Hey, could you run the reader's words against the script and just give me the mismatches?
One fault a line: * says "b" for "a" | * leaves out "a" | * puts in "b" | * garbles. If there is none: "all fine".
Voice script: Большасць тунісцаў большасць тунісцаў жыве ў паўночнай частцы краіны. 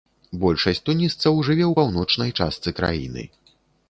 * leaves out "большасць тунісцаў"